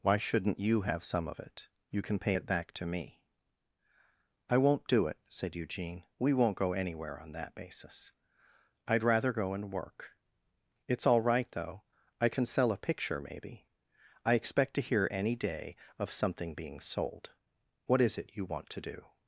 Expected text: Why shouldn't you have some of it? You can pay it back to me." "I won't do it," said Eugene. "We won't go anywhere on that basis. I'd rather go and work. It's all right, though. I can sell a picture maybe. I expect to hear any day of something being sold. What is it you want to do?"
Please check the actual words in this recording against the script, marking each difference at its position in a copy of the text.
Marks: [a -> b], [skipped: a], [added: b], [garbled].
Why shouldn't you have some of it? You can pay it back to me." "I won't do it," said Eugene. "We won't go anywhere on that basis. I'd rather go and work. It's all right, though. I can sell a picture maybe. I expect to hear any day of something being sold. What is it you want to do?"